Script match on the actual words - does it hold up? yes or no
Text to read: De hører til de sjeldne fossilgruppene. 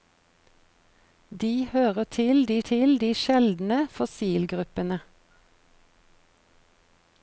no